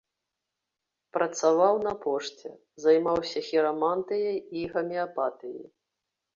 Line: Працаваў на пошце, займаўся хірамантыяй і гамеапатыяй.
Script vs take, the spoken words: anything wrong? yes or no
no